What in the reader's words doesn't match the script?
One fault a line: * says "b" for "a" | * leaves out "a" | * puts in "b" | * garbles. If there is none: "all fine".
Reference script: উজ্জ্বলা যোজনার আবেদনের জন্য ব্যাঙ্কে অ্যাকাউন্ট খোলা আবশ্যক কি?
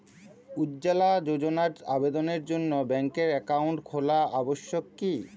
all fine